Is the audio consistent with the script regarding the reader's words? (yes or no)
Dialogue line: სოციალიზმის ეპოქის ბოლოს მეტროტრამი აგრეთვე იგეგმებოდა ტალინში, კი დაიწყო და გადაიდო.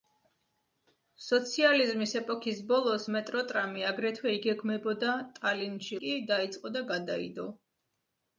yes